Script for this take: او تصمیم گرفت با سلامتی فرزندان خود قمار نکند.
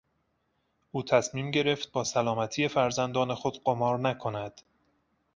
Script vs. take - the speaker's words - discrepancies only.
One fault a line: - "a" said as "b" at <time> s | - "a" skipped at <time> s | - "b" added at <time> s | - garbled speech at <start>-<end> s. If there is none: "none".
none